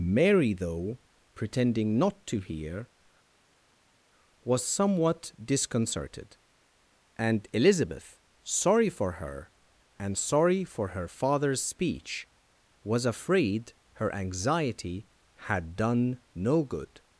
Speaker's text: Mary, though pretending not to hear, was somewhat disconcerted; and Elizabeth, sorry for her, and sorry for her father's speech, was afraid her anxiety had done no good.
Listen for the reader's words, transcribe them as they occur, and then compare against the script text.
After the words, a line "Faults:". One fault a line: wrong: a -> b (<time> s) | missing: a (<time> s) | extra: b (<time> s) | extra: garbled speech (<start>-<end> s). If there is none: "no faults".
Mary, though pretending not to hear, was somewhat disconcerted; and Elizabeth, sorry for her, and sorry for her father's speech, was afraid her anxiety had done no good.
Faults:
no faults